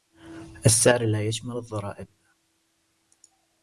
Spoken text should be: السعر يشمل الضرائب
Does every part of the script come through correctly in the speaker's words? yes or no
no